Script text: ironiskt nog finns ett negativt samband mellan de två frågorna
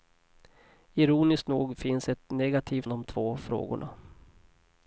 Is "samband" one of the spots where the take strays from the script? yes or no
yes